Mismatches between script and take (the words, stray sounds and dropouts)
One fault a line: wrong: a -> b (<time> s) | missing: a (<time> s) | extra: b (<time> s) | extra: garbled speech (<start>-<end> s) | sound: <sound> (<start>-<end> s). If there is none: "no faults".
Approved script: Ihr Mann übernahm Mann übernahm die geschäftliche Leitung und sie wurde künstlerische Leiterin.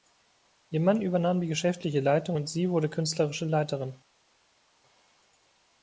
missing: Mann übernahm (1.4 s)